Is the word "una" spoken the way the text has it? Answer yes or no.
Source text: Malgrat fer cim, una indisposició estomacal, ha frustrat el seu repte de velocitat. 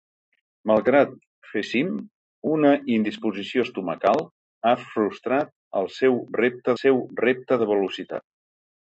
yes